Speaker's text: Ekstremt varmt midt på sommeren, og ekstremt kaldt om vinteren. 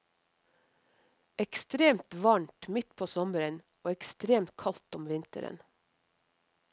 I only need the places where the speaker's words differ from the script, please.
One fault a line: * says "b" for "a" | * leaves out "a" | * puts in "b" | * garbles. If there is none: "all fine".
all fine